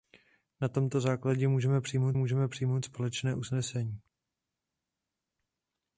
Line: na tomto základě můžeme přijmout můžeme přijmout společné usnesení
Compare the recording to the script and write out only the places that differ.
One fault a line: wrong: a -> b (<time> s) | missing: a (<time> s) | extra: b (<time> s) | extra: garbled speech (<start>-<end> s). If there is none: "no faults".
no faults